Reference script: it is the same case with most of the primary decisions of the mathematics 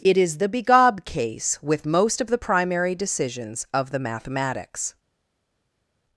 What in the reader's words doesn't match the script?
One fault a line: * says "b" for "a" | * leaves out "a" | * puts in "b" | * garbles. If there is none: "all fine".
* says "begob" for "same"